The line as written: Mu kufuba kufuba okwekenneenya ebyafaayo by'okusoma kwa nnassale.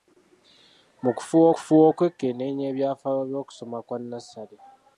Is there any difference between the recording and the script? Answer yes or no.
no